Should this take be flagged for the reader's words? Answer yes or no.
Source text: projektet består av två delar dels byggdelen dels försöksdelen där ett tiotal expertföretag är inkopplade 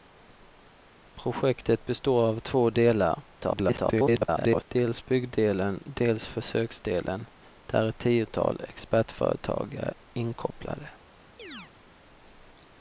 yes